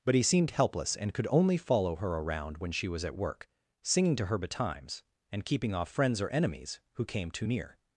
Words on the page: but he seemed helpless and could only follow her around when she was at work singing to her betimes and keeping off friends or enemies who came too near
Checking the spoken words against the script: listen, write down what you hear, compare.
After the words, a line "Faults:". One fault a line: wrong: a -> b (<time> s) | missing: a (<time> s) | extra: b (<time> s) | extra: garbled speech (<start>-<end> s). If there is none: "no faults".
but he seemed helpless and could only follow her around when she was at work singing to her betimes and keeping off friends or enemies who came too near
Faults:
no faults